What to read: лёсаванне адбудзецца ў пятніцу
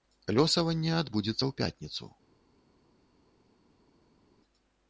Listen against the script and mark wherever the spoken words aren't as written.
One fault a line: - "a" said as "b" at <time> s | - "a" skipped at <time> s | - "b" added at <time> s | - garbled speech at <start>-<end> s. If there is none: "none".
none